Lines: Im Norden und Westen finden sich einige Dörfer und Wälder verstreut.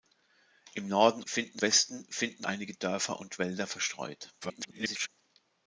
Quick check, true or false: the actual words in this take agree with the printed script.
false